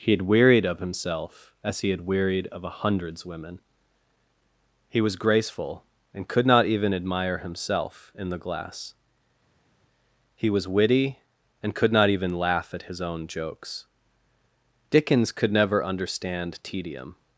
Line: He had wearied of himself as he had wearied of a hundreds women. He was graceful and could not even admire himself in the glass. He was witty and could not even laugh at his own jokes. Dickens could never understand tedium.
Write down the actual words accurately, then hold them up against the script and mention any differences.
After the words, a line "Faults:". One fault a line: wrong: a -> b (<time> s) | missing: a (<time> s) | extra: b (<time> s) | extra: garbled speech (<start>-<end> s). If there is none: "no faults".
He had wearied of himself as he had wearied of a hundreds women. He was graceful and could not even admire himself in the glass. He was witty and could not even laugh at his own jokes. Dickens could never understand tedium.
Faults:
no faults